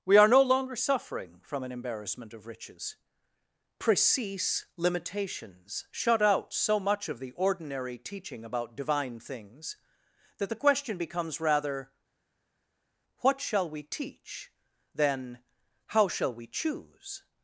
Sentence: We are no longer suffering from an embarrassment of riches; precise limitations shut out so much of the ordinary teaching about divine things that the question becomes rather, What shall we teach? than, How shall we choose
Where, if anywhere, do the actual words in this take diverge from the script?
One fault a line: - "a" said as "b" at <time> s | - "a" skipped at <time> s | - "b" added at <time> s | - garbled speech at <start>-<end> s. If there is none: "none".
none